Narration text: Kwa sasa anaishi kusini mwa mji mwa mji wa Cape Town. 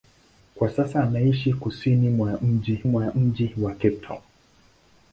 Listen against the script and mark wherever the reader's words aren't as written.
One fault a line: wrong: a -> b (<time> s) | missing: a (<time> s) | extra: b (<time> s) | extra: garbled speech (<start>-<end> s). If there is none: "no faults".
no faults